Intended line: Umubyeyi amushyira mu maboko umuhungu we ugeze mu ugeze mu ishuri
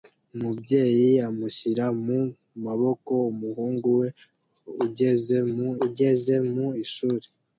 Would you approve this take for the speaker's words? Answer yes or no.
yes